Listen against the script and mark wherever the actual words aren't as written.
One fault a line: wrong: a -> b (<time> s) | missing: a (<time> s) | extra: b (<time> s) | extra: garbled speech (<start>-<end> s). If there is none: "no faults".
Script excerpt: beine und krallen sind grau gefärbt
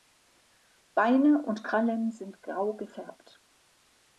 no faults